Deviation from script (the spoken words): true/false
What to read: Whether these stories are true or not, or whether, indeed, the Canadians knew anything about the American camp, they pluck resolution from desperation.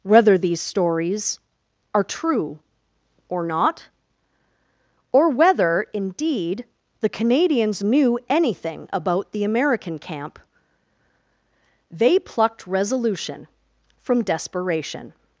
true